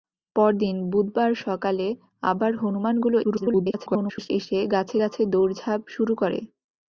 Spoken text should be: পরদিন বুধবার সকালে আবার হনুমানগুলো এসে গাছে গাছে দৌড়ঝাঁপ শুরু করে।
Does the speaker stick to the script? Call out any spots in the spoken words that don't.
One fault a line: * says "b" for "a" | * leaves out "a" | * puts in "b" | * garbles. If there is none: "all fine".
* garbles